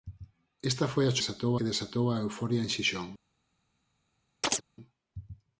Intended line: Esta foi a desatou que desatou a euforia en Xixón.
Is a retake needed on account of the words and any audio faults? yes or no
yes